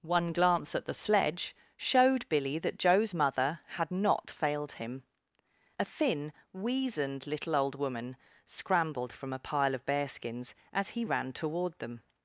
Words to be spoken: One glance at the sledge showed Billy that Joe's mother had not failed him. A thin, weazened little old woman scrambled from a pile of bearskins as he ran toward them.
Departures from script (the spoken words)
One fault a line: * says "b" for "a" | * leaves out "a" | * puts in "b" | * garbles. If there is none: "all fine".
all fine